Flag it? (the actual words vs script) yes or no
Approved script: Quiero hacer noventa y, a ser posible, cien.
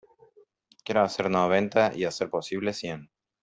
no